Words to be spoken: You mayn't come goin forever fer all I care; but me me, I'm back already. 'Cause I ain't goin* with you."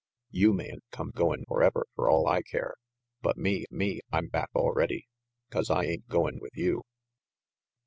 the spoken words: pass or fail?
pass